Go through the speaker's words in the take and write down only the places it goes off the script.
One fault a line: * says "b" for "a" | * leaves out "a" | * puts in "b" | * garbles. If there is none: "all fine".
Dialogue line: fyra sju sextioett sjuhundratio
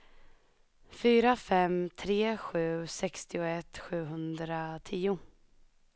* puts in "fem tre"